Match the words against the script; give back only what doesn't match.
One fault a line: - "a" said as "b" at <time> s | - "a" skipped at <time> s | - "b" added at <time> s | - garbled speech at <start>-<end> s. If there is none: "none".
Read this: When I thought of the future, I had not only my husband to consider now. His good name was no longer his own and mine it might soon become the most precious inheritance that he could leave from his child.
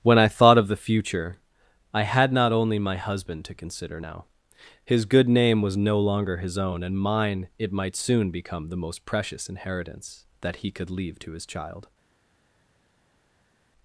- "from" said as "to" at 11.2 s